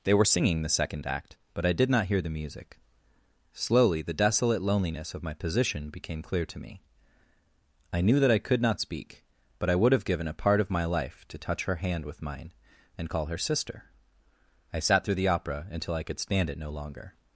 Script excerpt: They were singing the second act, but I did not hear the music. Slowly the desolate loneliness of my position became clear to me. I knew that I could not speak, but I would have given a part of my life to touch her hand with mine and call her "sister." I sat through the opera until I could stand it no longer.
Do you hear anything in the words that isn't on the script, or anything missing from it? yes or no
no